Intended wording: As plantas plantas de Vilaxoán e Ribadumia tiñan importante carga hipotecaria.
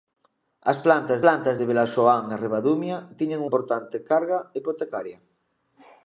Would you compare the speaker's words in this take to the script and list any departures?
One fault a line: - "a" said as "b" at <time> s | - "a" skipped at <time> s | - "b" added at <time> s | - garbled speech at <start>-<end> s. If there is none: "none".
none